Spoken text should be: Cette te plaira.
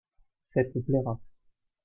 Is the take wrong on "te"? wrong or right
right